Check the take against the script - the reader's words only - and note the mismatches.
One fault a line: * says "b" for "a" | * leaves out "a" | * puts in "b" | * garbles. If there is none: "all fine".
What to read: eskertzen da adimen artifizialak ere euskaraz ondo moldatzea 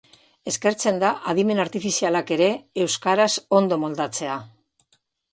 all fine